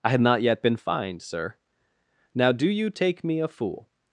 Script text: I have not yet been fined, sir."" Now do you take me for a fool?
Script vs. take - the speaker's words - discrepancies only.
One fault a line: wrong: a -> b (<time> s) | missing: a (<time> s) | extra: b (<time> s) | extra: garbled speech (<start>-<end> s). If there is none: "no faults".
wrong: have -> had (0.1 s)
missing: for (3.4 s)